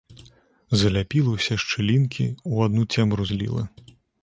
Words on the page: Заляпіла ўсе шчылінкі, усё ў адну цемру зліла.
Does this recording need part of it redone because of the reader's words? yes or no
yes